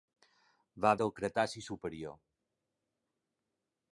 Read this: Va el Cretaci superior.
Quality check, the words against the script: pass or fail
pass